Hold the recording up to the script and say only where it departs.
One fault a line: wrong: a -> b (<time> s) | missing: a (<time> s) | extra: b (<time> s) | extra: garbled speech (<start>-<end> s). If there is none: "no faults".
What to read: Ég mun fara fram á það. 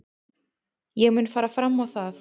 no faults